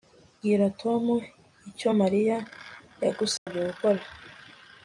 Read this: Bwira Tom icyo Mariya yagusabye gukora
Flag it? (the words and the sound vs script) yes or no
yes